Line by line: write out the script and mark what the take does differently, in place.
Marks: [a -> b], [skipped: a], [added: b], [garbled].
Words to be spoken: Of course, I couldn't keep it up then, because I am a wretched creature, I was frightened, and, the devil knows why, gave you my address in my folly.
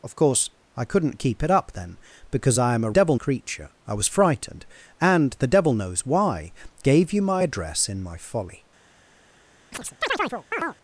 Of course, I couldn't keep it up then, because I am a [wretched -> devil] creature, I was frightened, and, the devil knows why, gave you my address in my folly.